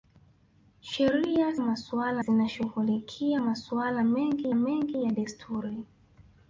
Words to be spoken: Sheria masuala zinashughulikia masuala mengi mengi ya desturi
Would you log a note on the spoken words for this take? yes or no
no